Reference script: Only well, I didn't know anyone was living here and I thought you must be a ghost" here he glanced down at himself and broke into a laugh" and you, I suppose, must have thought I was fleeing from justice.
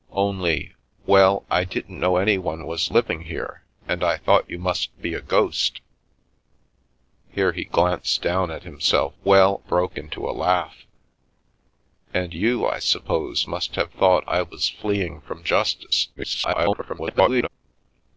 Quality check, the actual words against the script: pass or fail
fail